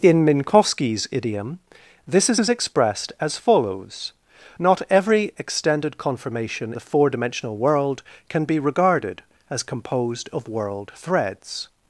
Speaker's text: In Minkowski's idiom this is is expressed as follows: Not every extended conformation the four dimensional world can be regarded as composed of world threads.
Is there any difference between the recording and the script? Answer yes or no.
no